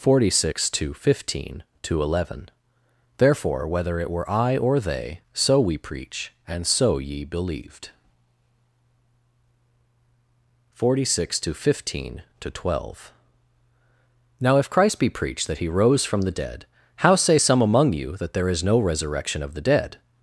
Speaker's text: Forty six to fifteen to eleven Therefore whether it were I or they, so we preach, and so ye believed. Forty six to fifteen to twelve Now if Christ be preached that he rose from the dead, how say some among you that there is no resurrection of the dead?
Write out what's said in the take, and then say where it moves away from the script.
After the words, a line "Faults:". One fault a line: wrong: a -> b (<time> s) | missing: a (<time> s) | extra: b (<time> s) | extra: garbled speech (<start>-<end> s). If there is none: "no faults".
Forty six to fifteen to eleven Therefore whether it were I or they, so we preach, and so ye believed. Forty six to fifteen to twelve Now if Christ be preached that he rose from the dead, how say some among you that there is no resurrection of the dead?
Faults:
no faults